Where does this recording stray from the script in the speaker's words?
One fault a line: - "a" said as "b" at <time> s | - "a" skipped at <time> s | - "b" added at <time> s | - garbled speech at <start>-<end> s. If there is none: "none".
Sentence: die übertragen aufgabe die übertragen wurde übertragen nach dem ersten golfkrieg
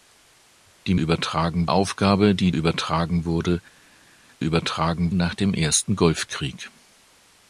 none